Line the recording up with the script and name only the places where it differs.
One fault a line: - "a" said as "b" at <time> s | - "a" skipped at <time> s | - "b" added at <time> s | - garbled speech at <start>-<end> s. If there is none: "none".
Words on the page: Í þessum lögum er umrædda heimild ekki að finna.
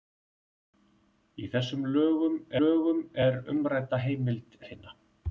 - "lögum" added at 2.6 s
- "ekki" skipped at 4.6 s